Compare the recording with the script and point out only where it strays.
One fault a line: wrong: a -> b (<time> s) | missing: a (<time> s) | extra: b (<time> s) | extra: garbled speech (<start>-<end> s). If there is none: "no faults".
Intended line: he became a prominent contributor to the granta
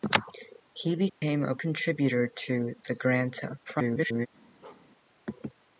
missing: prominent (1.5 s)
extra: garbled speech (3.7-4.3 s)